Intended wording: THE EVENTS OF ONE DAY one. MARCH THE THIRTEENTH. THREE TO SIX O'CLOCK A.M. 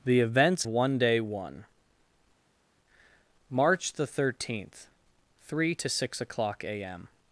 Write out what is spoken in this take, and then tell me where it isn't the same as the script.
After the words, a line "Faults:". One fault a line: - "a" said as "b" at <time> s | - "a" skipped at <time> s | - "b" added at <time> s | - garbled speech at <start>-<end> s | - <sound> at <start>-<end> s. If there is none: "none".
THE EVENTS ONE DAY one. MARCH THE THIRTEENTH. THREE TO SIX O'CLOCK A.M.
Faults:
- "OF" skipped at 0.7 s